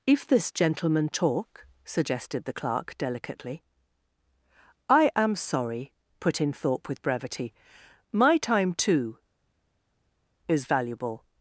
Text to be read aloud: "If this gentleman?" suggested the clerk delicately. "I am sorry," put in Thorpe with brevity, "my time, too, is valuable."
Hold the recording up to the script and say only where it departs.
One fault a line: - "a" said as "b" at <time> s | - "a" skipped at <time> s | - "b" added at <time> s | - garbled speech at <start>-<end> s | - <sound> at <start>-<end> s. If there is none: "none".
- "talk" added at 1.1 s